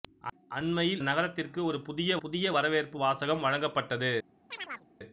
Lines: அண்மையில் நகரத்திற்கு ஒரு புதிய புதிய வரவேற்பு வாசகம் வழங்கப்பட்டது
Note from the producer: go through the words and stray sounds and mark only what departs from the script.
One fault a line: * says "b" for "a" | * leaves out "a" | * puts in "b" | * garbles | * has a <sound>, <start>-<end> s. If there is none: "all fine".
* has a chirp, 4.5-4.9 s